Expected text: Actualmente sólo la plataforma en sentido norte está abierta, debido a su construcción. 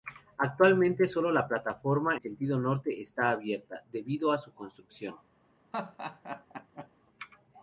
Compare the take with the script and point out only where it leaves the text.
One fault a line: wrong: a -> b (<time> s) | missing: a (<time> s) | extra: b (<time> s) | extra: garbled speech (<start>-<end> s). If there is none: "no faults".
missing: en (2.2 s)